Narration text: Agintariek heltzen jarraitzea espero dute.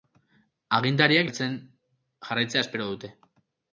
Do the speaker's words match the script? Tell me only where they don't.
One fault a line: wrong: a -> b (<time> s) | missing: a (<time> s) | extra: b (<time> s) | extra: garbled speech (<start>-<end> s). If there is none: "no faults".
no faults